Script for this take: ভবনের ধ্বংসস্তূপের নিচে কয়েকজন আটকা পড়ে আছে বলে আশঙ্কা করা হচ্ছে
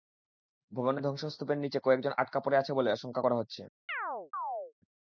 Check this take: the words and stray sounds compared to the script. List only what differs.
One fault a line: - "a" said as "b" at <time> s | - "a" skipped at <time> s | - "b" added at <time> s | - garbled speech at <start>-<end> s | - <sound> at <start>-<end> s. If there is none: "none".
- chirp at 3.9-4.7 s